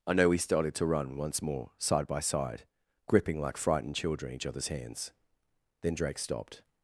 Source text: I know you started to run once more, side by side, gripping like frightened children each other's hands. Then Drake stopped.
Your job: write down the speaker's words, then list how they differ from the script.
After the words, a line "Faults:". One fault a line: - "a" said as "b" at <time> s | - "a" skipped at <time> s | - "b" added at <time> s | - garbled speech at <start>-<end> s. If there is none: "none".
I know we started to run once more, side by side, gripping like frightened children each other's hands. Then Drake stopped.
Faults:
- "you" said as "we" at 0.3 s